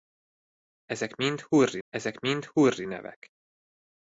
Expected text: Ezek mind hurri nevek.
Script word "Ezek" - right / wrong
right